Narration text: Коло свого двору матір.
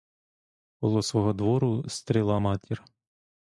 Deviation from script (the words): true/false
true